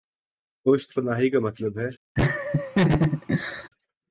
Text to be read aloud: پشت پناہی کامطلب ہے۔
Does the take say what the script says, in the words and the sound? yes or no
no